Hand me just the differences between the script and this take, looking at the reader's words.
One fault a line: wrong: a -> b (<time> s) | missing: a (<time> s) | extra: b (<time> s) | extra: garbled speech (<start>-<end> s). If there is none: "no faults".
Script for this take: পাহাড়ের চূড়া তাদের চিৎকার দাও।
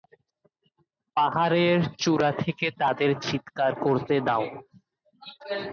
extra: থেকে (2.4 s)
extra: করতে (3.8 s)